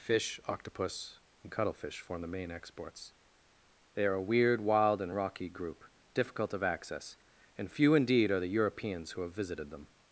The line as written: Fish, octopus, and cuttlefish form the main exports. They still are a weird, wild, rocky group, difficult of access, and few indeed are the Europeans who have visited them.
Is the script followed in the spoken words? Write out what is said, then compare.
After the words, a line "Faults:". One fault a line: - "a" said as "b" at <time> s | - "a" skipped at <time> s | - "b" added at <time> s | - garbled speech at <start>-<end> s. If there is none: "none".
Fish, octopus, and cuttlefish form the main exports. They are a weird, wild, and rocky group, difficult of access, and few indeed are the Europeans who have visited them.
Faults:
- "still" skipped at 4.0 s
- "and" added at 5.0 s